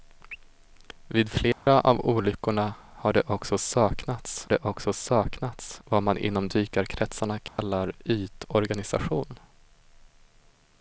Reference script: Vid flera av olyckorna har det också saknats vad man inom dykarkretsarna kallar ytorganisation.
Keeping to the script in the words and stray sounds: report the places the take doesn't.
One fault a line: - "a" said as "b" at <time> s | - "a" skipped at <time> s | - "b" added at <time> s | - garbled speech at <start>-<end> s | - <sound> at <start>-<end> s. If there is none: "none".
- dropout at 1.5-1.7 s
- "det också saknats" added at 4.5 s
- dropout at 7.5-7.6 s